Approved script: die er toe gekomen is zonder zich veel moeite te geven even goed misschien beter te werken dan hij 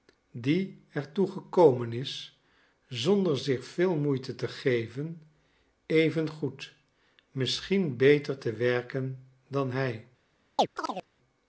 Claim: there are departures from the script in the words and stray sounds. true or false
true